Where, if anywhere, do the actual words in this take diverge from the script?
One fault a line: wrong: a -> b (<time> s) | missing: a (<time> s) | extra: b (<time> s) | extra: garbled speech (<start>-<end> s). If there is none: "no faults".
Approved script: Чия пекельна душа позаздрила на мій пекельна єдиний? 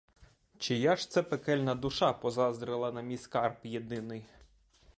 extra: ж це (0.9 s)
wrong: пекельна -> скарб (3.2 s)